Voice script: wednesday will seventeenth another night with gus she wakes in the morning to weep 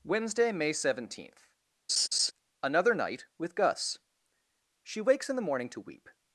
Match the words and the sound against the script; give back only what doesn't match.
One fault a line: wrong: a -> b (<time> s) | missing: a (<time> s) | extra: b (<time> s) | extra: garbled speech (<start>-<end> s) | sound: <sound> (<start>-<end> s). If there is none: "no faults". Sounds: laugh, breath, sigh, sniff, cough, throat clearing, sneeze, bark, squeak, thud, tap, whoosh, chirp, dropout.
wrong: will -> may (0.5 s)
sound: laugh (1.9-2.3 s)